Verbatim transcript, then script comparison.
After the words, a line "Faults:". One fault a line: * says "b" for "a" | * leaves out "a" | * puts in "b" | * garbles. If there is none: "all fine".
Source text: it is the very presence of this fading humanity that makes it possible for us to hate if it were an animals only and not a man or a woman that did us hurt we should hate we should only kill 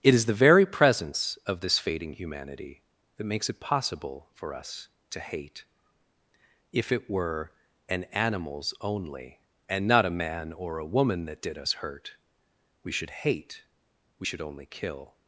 it is the very presence of this fading humanity that makes it possible for us to hate if it were an animals only and not a man or a woman that did us hurt we should hate we should only kill
Faults:
all fine